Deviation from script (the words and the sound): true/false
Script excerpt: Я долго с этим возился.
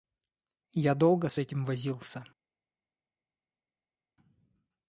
false